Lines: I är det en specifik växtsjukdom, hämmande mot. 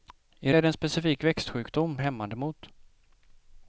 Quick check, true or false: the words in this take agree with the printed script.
true